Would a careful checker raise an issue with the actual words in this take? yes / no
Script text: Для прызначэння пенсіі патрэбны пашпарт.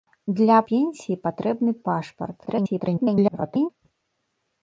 yes